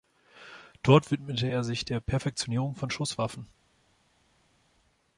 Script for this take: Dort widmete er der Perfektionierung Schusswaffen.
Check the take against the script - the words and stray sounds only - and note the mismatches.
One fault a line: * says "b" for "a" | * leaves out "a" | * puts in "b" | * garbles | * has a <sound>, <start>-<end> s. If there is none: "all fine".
* puts in "sich"
* puts in "von"